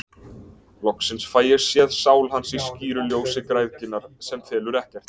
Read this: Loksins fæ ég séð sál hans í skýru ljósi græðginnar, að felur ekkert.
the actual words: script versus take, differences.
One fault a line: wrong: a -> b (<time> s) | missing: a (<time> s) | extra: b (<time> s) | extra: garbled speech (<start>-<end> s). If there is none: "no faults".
wrong: að -> sem (4.3 s)